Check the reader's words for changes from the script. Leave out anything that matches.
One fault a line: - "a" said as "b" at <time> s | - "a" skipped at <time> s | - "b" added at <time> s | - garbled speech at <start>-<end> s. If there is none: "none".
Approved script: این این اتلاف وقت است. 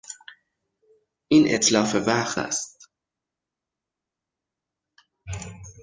- "این" skipped at 1.6 s